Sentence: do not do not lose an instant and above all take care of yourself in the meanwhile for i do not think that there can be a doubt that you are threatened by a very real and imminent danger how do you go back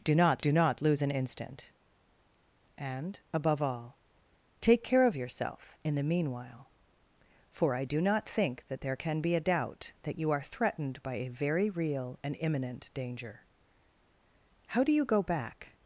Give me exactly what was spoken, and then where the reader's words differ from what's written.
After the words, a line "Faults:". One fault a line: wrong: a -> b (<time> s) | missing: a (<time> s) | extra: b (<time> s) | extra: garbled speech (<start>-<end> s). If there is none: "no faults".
do not do not lose an instant and above all take care of yourself in the meanwhile for i do not think that there can be a doubt that you are threatened by a very real and imminent danger how do you go back
Faults:
no faults